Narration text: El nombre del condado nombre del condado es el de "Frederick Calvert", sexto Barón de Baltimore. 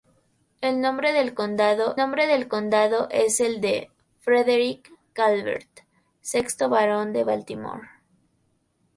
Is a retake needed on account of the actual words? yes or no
no